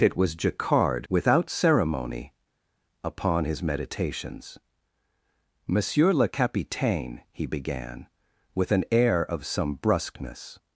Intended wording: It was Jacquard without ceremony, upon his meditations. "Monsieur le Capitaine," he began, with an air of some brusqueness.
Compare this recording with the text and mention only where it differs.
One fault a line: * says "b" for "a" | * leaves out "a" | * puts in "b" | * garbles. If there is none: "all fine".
all fine